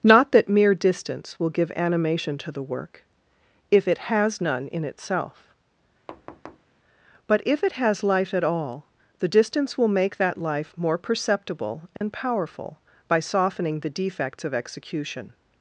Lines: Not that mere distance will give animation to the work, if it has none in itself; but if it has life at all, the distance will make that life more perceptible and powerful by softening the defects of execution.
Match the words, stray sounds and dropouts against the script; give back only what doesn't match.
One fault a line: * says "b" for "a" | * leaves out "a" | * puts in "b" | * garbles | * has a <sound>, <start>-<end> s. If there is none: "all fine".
* has a thud, 6.1-6.7 s
* has a dropout, 12.0-12.0 s